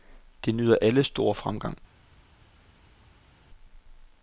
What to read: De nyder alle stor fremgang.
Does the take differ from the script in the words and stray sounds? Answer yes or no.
no